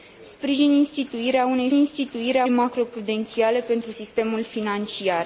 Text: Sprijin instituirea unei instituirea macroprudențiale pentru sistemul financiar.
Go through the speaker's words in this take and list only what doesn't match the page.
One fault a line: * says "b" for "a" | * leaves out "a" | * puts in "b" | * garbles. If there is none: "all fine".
all fine